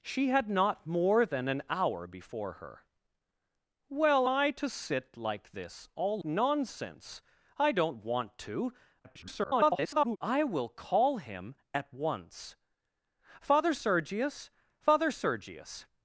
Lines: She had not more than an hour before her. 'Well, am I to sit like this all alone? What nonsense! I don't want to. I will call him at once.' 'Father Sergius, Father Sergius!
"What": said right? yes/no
no